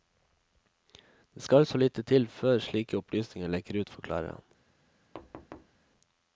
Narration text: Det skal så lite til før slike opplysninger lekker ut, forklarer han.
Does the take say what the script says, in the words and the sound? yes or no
no